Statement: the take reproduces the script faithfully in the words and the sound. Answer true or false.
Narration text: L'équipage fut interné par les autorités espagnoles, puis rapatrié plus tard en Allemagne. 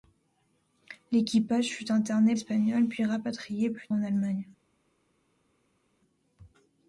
false